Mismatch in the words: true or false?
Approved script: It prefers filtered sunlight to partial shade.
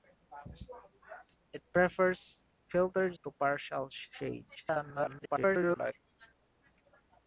true